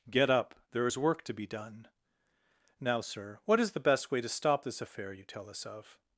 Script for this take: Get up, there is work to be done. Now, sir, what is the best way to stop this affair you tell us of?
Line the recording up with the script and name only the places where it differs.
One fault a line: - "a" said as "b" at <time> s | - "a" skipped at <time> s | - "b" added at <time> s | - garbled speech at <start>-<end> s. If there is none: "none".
none